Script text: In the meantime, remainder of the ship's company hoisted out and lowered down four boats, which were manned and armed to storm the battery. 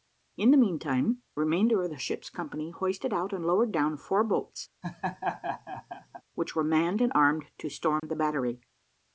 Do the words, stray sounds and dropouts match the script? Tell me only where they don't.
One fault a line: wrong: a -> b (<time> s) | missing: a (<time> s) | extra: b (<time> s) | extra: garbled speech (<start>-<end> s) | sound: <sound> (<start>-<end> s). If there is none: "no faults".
sound: laugh (4.8-6.2 s)
sound: dropout (8.0-8.0 s)